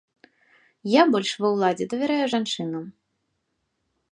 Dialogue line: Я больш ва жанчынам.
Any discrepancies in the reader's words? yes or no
yes